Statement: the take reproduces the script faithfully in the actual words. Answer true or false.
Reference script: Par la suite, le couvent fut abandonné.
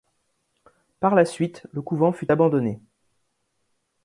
true